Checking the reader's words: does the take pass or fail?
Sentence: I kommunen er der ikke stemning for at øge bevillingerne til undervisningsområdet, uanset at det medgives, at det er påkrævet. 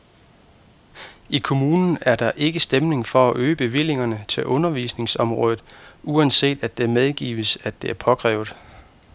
pass